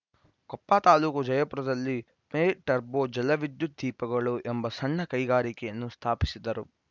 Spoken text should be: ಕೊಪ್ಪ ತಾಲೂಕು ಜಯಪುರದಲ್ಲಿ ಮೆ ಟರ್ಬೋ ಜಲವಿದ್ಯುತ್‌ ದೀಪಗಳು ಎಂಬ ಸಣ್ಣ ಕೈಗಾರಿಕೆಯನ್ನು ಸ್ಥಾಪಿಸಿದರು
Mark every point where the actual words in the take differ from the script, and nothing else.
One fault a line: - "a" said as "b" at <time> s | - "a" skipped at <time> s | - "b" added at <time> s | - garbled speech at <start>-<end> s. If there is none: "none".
none